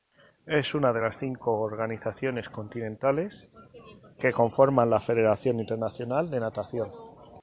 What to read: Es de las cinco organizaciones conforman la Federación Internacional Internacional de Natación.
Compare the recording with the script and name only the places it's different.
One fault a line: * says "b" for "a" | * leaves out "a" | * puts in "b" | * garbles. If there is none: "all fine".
* puts in "una"
* puts in "continentales que"
* leaves out "Internacional"